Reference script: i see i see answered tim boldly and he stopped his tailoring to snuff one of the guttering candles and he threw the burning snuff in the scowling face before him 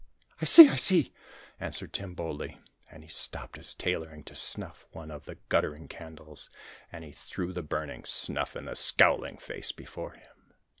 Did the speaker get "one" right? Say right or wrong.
right